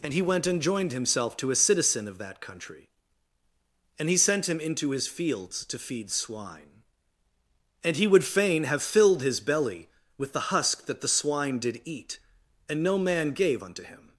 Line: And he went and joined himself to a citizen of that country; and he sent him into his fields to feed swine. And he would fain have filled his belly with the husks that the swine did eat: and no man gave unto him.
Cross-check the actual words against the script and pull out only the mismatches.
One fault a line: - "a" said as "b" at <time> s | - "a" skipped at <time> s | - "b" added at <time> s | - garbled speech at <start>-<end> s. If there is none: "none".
- "husks" said as "husk" at 10.5 s